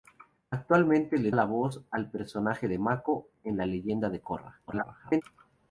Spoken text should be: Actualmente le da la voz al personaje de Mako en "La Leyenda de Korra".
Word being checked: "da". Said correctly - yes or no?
no